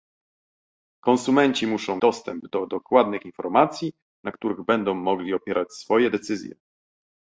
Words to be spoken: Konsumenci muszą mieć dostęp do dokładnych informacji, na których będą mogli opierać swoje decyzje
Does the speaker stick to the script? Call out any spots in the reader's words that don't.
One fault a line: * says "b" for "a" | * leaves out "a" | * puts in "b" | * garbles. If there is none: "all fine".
* leaves out "mieć"